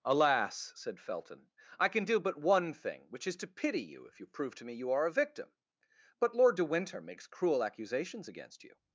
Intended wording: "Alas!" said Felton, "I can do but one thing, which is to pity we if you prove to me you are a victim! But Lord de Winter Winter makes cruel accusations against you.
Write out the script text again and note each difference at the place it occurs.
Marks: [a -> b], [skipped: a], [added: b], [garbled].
"Alas!" said Felton, "I can do but one thing, which is to pity [we -> you] if you prove to me you are a victim! But Lord de Winter [skipped: Winter] makes cruel accusations against you.